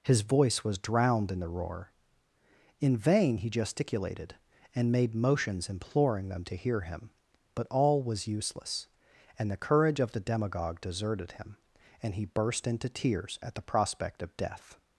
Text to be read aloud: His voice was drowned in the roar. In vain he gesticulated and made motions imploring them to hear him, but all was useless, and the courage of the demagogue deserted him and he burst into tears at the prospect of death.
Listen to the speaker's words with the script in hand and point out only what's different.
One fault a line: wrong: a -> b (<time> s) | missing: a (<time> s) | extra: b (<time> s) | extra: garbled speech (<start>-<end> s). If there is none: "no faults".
no faults